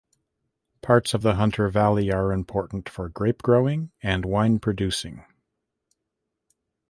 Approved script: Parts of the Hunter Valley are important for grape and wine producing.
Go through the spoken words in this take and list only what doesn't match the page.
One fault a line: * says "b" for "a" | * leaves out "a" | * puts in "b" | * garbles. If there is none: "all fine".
* puts in "growing"